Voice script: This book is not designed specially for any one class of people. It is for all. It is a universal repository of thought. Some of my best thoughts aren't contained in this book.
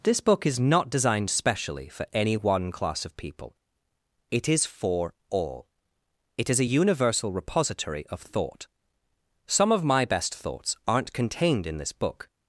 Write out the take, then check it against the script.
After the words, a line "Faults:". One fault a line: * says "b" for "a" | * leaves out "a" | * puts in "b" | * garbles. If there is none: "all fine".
This book is not designed specially for any one class of people. It is for all. It is a universal repository of thought. Some of my best thoughts aren't contained in this book.
Faults:
all fine